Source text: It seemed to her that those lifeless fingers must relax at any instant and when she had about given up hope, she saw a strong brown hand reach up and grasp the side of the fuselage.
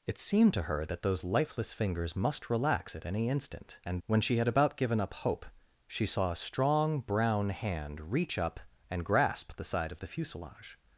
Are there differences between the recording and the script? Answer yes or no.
no